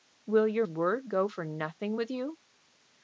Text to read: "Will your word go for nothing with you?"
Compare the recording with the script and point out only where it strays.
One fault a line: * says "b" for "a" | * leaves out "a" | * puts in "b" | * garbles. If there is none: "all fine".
all fine